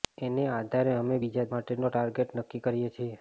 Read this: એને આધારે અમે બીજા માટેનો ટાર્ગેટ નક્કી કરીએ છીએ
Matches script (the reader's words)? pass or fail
pass